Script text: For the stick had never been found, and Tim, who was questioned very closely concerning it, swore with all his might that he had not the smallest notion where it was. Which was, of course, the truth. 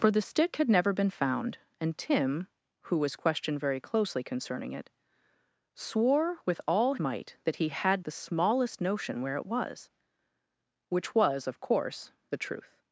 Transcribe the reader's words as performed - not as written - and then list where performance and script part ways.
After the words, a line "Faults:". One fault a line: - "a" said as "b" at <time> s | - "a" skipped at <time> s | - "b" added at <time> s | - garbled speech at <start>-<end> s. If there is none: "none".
For the stick had never been found, and Tim, who was questioned very closely concerning it, swore with all might that he had the smallest notion where it was. Which was, of course, the truth.
Faults:
- "his" skipped at 7.0 s
- "not" skipped at 8.1 s